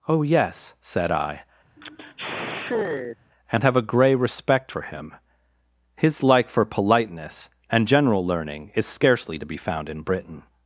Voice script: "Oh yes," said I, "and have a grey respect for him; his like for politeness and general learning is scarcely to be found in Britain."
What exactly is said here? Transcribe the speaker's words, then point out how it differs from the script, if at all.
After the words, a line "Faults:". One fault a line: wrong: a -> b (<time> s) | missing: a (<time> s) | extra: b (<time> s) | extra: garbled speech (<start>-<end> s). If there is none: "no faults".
"Oh yes," said I, "and have a grey respect for him; his like for politeness and general learning is scarcely to be found in Britain."
Faults:
no faults